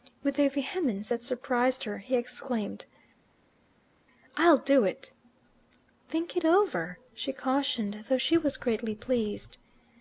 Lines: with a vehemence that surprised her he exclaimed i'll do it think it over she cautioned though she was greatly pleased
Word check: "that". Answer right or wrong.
right